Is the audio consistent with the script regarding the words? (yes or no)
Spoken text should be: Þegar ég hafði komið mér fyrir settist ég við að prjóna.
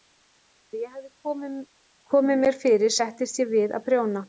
yes